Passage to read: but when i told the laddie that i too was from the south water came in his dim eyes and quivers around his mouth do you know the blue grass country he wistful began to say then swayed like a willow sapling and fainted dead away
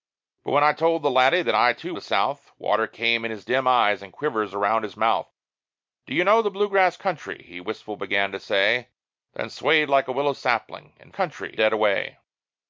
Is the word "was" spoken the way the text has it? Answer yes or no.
no